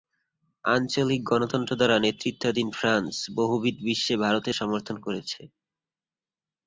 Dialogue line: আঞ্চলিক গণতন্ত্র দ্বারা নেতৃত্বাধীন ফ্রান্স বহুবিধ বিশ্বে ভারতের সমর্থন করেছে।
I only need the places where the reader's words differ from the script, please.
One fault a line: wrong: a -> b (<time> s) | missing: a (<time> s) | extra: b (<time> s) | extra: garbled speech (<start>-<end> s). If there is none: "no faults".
no faults